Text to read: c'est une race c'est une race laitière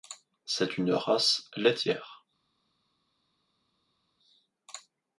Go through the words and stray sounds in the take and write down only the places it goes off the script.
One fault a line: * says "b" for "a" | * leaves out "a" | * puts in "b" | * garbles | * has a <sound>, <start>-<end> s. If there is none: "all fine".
* leaves out "c'est une race"